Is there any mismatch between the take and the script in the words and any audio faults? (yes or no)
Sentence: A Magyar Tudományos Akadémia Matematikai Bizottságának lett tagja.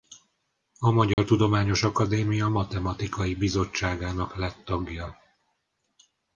yes